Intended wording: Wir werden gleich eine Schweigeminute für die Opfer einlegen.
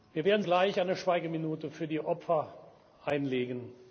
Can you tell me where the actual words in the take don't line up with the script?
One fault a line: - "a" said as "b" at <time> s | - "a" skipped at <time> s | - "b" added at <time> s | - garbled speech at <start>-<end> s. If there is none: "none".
none